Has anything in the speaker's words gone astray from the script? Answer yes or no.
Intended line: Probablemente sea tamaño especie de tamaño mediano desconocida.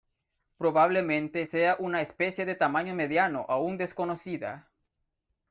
yes